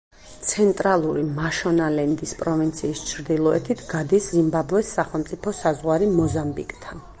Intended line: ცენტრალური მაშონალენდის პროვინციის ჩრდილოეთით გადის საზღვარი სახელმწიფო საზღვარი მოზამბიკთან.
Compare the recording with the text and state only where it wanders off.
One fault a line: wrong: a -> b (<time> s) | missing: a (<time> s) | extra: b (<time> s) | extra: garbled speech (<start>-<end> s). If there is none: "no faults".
wrong: საზღვარი -> ზიმბაბვეს (4.4 s)